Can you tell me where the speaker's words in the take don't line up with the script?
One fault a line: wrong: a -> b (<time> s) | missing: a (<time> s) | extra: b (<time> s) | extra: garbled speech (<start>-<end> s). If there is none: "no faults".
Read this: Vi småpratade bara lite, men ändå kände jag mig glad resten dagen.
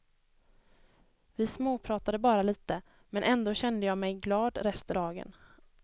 no faults